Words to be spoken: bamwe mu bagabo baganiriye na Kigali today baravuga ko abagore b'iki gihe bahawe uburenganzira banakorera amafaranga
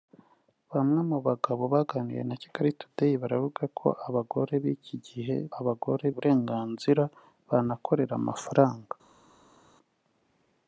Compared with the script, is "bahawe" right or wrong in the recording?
wrong